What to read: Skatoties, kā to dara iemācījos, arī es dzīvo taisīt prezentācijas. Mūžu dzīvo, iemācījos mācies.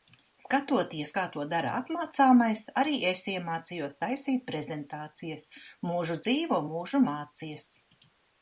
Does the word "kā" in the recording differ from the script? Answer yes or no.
no